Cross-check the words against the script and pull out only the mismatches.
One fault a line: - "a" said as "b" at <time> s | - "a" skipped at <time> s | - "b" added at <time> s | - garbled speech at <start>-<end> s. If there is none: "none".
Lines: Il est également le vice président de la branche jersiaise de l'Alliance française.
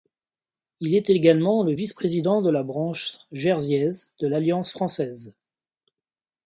none